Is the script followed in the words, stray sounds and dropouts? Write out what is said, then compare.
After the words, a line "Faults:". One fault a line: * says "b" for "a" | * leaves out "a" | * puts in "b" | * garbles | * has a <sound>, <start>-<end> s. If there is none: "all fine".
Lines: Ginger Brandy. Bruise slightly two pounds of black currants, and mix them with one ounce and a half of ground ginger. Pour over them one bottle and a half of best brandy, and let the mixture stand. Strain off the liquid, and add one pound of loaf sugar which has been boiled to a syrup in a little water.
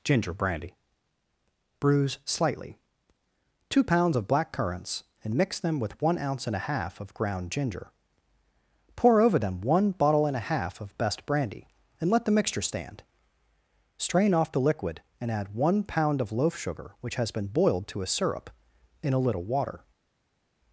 Ginger Brandy. Bruise slightly two pounds of black currants, and mix them with one ounce and a half of ground ginger. Pour over them one bottle and a half of best brandy, and let the mixture stand. Strain off the liquid, and add one pound of loaf sugar which has been boiled to a syrup in a little water.
Faults:
all fine